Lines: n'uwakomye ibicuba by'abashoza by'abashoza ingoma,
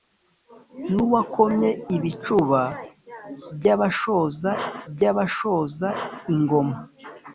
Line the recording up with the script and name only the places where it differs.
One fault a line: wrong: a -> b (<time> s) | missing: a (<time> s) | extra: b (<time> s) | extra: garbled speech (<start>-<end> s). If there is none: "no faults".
no faults